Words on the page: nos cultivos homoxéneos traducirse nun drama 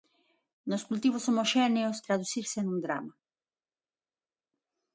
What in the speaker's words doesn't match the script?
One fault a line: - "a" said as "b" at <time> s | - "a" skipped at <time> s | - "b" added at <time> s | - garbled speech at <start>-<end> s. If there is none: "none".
none